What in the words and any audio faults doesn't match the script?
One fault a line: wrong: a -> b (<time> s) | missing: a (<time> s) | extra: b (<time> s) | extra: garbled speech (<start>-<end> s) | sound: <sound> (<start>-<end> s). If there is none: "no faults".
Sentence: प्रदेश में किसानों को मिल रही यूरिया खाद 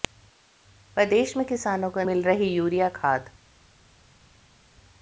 no faults